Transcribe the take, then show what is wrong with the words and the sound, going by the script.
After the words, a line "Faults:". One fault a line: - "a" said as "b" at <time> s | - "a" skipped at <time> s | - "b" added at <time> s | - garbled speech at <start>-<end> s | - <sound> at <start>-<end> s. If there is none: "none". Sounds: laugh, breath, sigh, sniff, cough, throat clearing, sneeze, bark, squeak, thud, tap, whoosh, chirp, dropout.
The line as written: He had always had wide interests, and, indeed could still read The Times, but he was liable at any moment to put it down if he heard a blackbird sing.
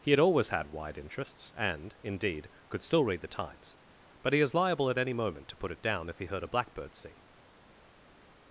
He had always had wide interests, and, indeed could still read The Times, but he is liable at any moment to put it down if he heard a blackbird sing.
Faults:
- "was" said as "is" at 4.4 s